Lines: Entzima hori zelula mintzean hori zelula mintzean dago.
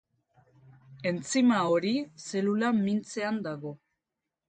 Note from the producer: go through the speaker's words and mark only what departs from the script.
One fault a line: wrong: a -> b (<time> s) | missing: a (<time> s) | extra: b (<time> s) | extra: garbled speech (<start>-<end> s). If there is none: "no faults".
missing: hori zelula mintzean (3.5 s)